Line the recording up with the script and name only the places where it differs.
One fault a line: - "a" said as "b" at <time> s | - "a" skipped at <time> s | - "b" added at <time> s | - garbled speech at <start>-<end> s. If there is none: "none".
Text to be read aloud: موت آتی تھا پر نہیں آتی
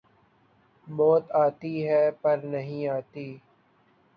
- "تھا" said as "ہے" at 1.9 s